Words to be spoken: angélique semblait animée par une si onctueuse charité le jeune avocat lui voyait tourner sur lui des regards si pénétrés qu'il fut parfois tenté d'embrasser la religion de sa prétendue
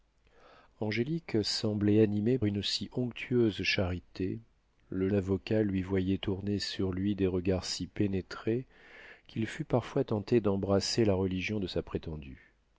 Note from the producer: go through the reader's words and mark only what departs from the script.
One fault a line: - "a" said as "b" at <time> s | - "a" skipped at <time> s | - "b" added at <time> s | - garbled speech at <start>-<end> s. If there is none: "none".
- "par" skipped at 2.4 s
- "jeune" skipped at 5.1 s